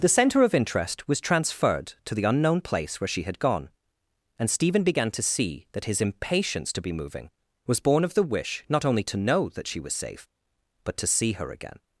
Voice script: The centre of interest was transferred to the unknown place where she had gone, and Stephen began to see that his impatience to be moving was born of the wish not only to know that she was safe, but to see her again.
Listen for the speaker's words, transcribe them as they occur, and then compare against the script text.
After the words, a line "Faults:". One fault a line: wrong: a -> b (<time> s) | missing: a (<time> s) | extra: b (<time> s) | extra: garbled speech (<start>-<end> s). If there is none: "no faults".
The centre of interest was transferred to the unknown place where she had gone, and Stephen began to see that his impatience to be moving was born of the wish not only to know that she was safe, but to see her again.
Faults:
no faults